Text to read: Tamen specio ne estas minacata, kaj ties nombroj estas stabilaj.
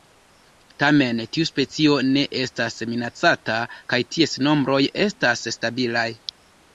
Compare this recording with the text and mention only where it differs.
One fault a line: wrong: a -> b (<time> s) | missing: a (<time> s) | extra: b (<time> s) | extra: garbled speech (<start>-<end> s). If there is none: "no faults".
extra: tiu (1.4 s)